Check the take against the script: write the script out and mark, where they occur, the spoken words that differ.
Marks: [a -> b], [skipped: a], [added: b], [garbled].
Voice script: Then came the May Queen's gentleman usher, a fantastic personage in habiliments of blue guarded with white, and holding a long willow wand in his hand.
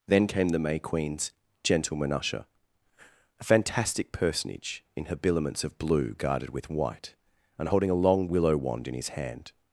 Then came the May Queen's gentleman usher, a fantastic personage in habiliments of blue guarded with white, and holding a long willow wand in his hand.